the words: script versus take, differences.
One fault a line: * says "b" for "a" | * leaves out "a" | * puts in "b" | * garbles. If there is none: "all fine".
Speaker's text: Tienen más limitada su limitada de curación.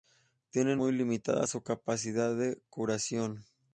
* says "muy" for "más"
* says "capacidad" for "limitada"